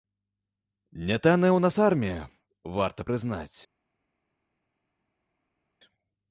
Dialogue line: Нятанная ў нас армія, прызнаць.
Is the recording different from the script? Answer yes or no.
yes